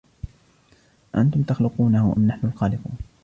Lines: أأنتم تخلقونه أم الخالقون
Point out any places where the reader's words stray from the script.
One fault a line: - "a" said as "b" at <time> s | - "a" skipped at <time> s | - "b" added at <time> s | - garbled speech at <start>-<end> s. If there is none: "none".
- "نحن" added at 2.3 s